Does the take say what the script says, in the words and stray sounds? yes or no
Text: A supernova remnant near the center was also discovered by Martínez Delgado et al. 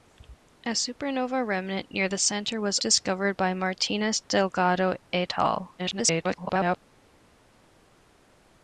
no